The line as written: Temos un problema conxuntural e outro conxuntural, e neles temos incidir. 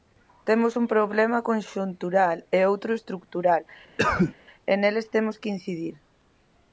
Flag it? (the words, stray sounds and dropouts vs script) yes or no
yes